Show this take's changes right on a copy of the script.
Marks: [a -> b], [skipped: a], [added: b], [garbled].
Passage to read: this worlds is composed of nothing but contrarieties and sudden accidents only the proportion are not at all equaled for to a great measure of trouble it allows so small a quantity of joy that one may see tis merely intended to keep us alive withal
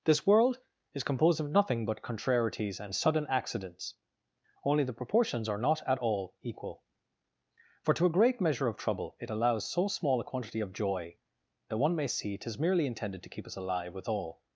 this [worlds -> world] is composed of nothing but contrarieties and sudden accidents only the [proportion -> proportions] are not at all [equaled -> equal] for to a great measure of trouble it allows so small a quantity of joy that one may see tis merely intended to keep us alive withal